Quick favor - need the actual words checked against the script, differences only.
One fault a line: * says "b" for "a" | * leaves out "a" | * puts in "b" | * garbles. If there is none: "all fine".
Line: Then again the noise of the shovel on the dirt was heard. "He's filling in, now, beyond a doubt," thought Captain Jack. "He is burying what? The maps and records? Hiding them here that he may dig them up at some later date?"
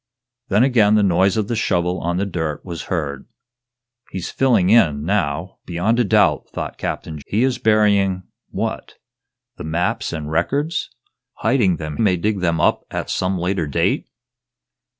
* leaves out "Jack"
* leaves out "here that he"